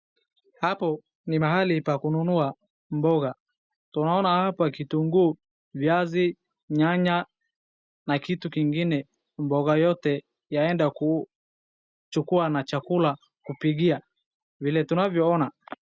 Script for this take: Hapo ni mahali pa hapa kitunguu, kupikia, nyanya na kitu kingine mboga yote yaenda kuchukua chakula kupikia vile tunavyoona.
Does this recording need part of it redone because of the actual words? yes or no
yes